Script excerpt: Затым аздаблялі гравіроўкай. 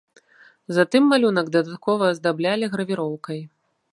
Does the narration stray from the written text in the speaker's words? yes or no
yes